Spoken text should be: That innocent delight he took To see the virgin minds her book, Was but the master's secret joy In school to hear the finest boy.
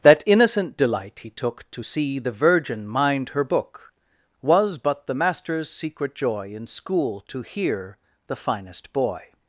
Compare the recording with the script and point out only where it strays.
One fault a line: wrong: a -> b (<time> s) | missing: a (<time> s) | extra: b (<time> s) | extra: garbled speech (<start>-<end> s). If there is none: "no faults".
wrong: minds -> mind (2.9 s)